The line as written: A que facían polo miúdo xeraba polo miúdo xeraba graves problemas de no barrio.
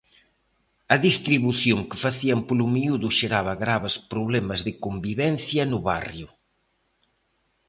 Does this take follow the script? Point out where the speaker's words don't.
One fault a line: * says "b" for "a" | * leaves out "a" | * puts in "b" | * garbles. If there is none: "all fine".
* puts in "distribución"
* leaves out "polo miúdo xeraba"
* puts in "convivencia"